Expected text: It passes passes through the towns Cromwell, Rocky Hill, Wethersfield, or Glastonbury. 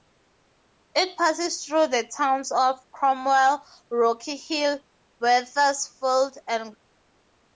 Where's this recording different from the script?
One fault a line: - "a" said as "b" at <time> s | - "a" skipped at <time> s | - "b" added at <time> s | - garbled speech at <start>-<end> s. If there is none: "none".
- "passes" skipped at 1.6 s
- "of" added at 2.5 s
- "or" said as "and" at 6.5 s